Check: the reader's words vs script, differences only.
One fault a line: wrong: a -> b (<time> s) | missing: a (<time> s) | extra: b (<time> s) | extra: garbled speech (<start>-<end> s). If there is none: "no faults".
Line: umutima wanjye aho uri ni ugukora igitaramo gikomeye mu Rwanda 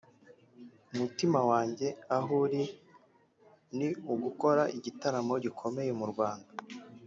no faults